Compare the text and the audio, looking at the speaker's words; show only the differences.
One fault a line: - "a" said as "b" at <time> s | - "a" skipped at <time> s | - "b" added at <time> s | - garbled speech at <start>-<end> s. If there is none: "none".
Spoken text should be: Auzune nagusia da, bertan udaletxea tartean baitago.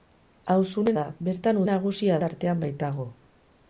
- "nagusia" skipped at 0.9 s
- "udaletxea" said as "nagusia" at 1.7 s